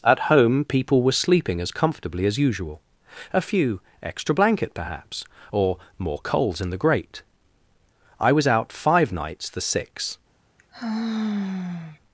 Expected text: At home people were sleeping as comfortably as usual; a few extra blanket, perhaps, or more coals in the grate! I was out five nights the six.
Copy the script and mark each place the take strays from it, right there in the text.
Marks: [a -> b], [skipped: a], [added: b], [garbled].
At home people were sleeping as comfortably as usual; a few extra blanket, perhaps, or more coals in the grate! I was out five nights the six.